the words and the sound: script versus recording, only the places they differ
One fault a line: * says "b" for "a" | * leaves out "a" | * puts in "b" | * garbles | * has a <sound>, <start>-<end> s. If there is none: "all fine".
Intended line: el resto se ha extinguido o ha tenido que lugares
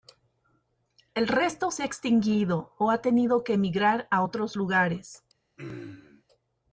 * puts in "emigrar a otros"
* has a throat clearing, 5.6-6.2 s